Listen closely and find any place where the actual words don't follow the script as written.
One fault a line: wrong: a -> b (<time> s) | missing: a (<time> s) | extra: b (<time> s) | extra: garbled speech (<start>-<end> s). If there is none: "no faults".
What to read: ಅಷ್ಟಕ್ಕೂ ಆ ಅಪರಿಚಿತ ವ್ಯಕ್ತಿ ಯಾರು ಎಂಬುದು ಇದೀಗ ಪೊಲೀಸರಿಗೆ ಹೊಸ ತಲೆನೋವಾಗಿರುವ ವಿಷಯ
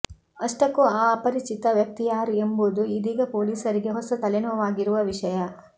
no faults